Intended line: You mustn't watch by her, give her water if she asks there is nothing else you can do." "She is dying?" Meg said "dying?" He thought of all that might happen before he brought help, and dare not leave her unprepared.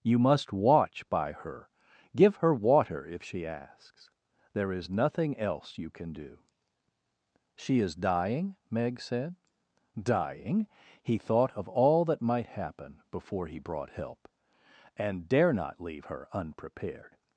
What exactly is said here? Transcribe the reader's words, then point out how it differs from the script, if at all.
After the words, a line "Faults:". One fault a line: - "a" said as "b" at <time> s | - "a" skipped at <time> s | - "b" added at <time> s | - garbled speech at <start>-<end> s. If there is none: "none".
You must watch by her, give her water if she asks there is nothing else you can do." "She is dying?" Meg said "dying?" He thought of all that might happen before he brought help, and dare not leave her unprepared.
Faults:
- "mustn't" said as "must" at 0.2 s